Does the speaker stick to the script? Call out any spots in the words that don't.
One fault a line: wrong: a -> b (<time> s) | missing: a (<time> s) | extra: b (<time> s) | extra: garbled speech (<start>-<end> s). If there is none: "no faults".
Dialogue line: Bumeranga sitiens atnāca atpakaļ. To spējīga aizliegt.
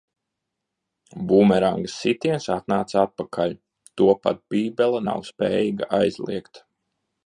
extra: pat Bībele nav (4.2 s)